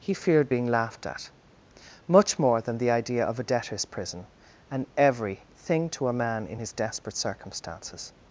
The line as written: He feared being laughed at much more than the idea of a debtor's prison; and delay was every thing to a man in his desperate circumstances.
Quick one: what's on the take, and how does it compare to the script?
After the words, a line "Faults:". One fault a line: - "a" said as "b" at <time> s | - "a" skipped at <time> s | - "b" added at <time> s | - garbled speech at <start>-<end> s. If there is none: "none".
He feared being laughed at much more than the idea of a debtor's prison; and every thing to a man in his desperate circumstances.
Faults:
- "delay was" skipped at 4.9 s